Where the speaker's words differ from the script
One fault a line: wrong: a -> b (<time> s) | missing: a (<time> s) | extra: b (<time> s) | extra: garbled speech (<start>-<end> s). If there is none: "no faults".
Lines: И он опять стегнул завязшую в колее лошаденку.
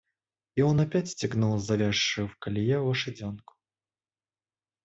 no faults